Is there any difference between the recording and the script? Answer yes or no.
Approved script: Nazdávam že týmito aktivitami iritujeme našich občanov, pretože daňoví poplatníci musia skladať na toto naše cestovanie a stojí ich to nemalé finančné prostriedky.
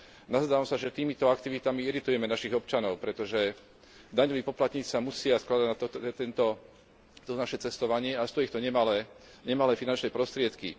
yes